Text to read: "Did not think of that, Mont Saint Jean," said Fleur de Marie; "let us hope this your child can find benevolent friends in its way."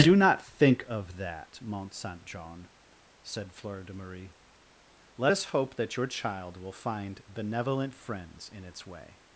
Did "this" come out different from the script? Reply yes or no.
yes